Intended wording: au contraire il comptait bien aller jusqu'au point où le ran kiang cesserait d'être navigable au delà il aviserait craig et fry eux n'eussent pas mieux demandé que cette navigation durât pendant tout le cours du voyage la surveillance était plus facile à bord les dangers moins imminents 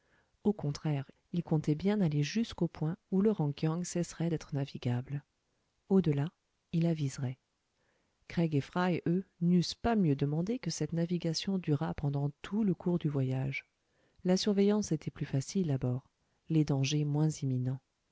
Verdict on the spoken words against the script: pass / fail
pass